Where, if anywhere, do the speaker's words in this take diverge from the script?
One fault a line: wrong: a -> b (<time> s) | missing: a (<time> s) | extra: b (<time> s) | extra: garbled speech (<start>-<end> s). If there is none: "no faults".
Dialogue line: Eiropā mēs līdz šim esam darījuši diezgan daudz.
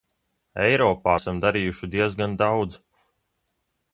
missing: mēs līdz šim (1.2 s)